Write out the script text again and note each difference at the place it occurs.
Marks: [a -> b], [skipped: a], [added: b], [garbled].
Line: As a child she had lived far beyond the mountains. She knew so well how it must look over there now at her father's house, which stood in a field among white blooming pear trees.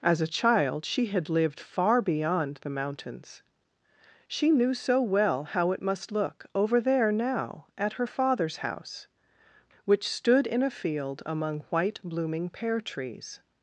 As a child she had lived far beyond the mountains. She knew so well how it must look over there now at her father's house, which stood in a field among white blooming pear trees.